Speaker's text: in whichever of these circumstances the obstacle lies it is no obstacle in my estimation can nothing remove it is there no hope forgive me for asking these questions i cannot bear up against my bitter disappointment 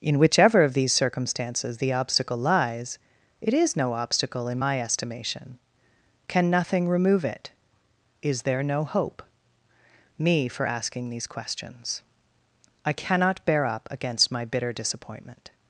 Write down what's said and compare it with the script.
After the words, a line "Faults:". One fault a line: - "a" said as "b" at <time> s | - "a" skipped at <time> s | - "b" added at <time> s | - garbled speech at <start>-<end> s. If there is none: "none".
in whichever of these circumstances the obstacle lies it is no obstacle in my estimation can nothing remove it is there no hope me for asking these questions i cannot bear up against my bitter disappointment
Faults:
- "forgive" skipped at 9.2 s